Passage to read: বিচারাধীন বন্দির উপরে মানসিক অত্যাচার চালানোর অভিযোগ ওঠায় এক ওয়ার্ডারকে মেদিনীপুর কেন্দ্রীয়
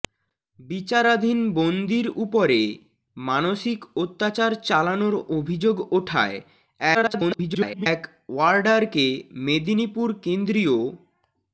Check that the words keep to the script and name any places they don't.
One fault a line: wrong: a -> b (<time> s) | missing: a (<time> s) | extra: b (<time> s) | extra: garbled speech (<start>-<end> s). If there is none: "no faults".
extra: garbled speech (6.9-7.9 s)